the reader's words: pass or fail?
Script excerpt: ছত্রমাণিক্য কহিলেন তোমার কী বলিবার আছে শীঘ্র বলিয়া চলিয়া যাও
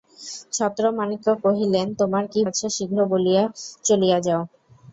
fail